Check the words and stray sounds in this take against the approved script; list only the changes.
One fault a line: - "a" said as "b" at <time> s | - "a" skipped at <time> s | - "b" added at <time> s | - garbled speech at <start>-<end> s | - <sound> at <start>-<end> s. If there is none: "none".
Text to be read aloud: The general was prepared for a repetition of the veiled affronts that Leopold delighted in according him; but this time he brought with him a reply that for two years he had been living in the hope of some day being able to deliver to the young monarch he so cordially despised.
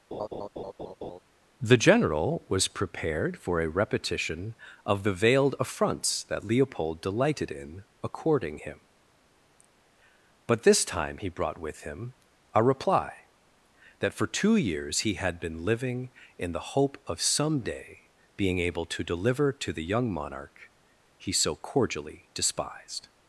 - laugh at 0.1-1.2 s